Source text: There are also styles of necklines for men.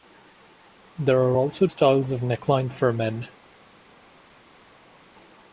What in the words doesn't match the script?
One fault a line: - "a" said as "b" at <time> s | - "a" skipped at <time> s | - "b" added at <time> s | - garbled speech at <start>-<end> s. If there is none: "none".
none